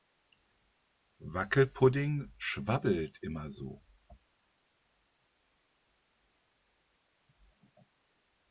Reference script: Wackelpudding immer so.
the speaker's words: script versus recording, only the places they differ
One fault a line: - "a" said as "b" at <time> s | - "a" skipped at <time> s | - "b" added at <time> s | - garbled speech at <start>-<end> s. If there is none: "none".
- "schwabbelt" added at 2.4 s